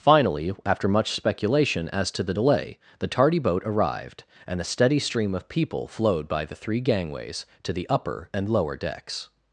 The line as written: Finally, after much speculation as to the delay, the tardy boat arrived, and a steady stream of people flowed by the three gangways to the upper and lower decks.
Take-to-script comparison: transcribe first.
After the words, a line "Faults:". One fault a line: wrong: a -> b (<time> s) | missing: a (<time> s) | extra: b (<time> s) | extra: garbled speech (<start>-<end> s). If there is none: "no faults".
Finally, after much speculation as to the delay, the tardy boat arrived, and a steady stream of people flowed by the three gangways to the upper and lower decks.
Faults:
no faults